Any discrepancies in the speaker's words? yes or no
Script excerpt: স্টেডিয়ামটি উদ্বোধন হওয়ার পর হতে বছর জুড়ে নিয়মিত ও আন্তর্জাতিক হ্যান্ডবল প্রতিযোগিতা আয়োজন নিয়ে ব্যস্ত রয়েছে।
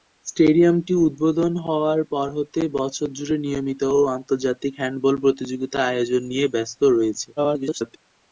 yes